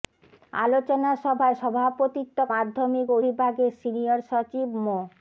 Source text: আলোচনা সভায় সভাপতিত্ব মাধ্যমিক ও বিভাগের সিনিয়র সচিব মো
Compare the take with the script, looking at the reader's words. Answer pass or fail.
pass